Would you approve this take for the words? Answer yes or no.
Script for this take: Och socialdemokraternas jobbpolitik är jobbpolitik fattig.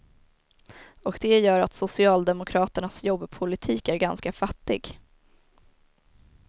no